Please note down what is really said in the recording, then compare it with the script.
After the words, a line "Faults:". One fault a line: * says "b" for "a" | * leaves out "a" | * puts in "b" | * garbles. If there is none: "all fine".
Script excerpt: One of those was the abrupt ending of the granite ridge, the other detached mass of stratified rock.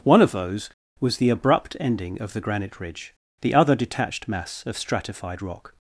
One of those was the abrupt ending of the granite ridge, the other detached mass of stratified rock.
Faults:
all fine